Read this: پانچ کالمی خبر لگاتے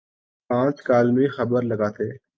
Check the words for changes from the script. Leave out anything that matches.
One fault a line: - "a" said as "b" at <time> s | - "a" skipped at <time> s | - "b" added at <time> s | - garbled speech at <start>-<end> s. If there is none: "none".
none